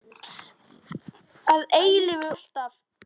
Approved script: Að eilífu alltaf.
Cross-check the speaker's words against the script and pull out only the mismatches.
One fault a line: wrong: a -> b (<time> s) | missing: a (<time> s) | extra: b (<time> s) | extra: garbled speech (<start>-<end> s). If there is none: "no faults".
no faults